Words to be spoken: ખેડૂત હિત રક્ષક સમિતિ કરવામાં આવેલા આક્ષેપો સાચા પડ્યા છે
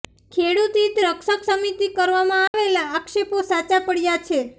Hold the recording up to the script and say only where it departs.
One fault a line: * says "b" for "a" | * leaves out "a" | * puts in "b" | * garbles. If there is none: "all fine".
all fine